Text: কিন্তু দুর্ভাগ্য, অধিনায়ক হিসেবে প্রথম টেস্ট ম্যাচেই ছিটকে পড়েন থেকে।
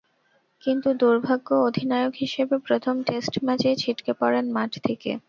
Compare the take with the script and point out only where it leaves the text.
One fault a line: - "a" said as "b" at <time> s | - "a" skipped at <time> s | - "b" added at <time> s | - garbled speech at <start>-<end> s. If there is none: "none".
- "মাঠ" added at 4.5 s